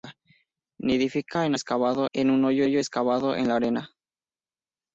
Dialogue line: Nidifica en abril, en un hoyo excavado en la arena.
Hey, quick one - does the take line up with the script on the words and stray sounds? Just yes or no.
no